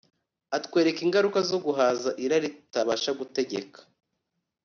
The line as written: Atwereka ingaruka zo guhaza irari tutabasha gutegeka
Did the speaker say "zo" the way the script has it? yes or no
yes